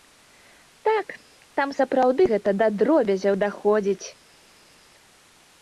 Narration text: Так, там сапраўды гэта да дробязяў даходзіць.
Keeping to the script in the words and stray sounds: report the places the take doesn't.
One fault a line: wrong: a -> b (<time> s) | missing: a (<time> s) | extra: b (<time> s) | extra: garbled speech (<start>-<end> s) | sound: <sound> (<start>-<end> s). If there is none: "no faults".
no faults